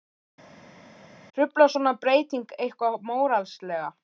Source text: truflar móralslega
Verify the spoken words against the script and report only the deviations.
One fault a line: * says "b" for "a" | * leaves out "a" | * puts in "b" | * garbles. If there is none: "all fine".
* puts in "svona breyting eitthvað"